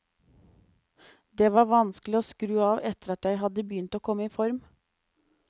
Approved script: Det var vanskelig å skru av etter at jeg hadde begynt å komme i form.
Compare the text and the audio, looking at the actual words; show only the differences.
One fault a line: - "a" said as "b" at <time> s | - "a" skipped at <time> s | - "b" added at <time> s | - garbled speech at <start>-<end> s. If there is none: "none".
none